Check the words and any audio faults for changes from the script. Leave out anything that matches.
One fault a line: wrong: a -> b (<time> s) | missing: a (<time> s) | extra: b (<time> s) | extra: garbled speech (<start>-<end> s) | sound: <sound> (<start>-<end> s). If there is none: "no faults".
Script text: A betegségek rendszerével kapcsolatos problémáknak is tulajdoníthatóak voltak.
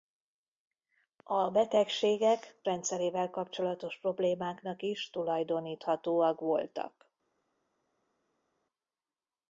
no faults